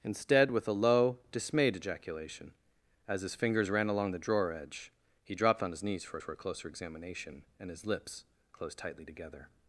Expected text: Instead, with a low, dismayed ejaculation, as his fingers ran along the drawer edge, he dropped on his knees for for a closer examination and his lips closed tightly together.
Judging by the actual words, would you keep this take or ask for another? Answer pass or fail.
pass